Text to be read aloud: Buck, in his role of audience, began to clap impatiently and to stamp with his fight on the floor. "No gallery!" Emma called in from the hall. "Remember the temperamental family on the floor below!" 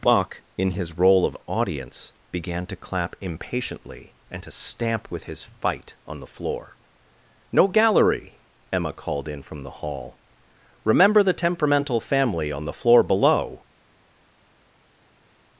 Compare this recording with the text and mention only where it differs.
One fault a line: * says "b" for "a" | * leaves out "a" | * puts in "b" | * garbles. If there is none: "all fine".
all fine